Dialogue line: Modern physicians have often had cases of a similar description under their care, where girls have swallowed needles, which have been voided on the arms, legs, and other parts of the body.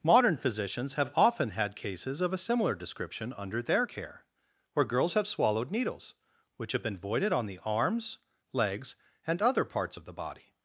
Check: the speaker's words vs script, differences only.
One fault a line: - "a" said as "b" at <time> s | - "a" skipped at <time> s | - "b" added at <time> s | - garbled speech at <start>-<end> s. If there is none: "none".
none